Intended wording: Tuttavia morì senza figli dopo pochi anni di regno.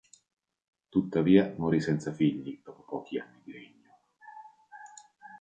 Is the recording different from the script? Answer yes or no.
no